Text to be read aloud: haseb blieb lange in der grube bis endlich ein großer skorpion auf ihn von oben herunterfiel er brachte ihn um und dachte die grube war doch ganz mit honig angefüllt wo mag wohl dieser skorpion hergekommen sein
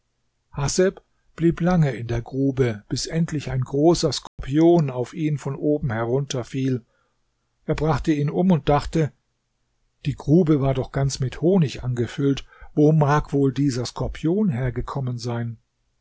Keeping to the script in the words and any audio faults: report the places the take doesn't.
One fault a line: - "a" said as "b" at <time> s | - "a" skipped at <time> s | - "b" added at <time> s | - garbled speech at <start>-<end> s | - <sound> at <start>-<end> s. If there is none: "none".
- dropout at 4.3-4.4 s